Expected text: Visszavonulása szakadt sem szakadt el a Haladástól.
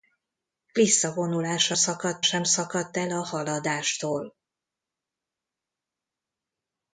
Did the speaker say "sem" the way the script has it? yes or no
yes